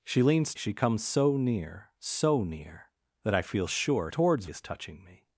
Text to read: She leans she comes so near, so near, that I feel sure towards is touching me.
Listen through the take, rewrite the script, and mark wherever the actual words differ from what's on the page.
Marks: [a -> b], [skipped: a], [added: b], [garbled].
She leans she comes so near, so near, that I feel sure towards is touching me.